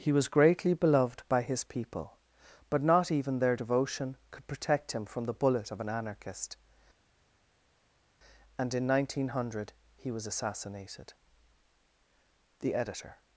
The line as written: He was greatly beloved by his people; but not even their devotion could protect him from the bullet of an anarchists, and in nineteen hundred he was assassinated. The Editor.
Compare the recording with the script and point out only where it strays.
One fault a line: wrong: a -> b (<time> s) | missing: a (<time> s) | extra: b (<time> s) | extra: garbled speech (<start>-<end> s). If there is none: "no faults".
wrong: anarchists -> anarchist (5.9 s)